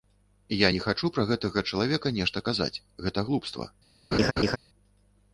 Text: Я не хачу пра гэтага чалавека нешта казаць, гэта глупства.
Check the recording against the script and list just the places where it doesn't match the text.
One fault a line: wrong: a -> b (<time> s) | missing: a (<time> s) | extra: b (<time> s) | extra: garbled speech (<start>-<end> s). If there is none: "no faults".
no faults